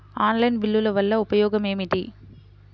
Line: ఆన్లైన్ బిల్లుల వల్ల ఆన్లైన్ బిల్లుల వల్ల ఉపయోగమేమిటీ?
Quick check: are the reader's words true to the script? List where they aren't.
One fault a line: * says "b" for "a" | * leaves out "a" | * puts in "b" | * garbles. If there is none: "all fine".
* leaves out "ఆన్లైన్ బిల్లుల వల్ల"